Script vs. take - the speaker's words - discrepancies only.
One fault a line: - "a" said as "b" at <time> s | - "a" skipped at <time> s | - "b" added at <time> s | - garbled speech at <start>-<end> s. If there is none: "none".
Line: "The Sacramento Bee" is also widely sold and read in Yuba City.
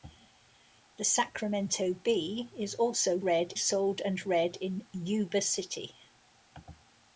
- "widely" said as "read" at 3.2 s